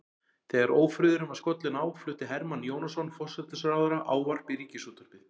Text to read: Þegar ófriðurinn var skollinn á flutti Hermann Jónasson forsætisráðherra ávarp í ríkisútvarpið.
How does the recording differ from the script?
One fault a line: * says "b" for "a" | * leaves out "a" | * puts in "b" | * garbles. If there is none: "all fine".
all fine